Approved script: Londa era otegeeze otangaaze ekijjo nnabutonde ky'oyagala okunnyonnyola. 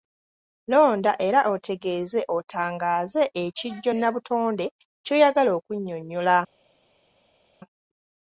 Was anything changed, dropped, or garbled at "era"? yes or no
no